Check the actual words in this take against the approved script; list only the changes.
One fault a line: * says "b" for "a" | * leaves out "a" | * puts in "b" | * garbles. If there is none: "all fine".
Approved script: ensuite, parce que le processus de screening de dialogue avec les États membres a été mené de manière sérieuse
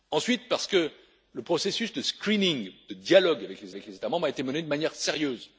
* puts in "avec les"